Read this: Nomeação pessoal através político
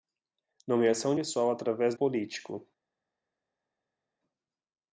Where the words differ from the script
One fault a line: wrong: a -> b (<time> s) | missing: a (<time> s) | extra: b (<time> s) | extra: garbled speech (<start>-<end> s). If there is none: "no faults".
no faults